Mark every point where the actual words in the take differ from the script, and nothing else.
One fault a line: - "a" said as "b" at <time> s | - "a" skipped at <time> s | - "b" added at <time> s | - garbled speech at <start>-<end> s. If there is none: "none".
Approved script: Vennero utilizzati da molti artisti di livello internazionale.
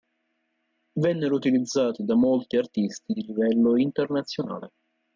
none